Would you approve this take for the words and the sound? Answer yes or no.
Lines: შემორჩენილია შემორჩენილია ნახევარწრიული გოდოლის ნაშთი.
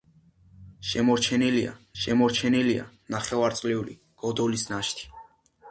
yes